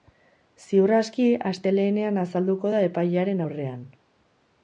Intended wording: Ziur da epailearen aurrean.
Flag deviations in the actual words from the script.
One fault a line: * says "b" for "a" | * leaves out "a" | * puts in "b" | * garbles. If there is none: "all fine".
* puts in "aski astelehenean azalduko"